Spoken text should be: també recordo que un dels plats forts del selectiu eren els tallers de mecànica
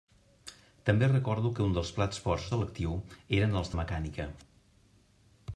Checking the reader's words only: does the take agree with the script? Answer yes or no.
no